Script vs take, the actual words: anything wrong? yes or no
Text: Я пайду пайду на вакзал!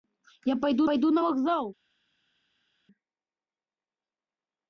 no